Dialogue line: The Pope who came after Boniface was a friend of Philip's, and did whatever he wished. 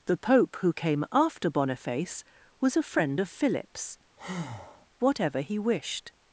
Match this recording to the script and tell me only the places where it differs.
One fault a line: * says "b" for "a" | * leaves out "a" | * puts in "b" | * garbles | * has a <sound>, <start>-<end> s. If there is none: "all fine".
* leaves out "and did"
* has a breath, 4.2-4.9 s